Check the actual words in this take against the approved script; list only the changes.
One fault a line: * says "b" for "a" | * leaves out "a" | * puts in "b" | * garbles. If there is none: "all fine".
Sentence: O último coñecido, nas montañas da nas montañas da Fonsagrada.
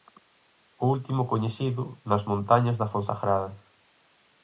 * leaves out "nas montañas da"